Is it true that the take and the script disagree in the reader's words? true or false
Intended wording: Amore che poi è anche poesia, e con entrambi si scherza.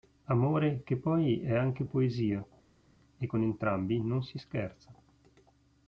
true